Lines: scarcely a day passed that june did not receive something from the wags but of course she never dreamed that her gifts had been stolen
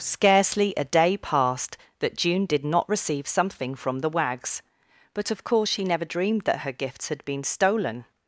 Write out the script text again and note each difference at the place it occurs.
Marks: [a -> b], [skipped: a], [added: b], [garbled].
scarcely a day passed that june did not receive something from the wags but of course she never dreamed that her gifts had been stolen